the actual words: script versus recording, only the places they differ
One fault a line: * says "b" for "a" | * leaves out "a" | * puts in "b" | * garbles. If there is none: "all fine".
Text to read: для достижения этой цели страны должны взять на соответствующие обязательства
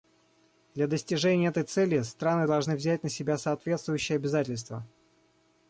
* puts in "себя"